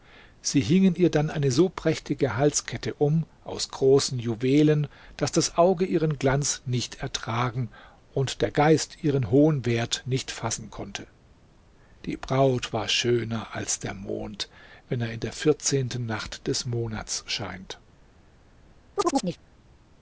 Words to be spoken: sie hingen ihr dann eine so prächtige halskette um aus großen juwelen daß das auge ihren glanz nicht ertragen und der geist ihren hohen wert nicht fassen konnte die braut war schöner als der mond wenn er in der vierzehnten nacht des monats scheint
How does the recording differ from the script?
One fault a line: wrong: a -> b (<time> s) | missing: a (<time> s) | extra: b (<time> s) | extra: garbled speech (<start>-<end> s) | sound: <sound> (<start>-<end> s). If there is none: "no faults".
sound: chirp (19.0-19.4 s)